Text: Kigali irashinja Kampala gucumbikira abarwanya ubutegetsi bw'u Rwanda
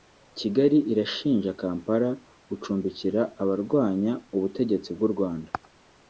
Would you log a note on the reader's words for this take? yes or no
no